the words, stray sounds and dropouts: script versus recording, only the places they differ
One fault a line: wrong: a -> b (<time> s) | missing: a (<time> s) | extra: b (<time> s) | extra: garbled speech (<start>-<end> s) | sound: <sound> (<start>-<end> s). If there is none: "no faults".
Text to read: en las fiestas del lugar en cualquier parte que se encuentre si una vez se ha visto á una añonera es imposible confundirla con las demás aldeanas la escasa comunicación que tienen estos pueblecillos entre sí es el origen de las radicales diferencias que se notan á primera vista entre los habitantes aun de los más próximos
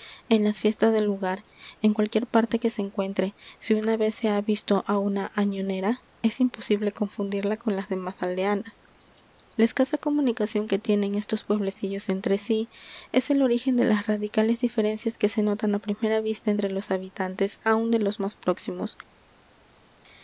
no faults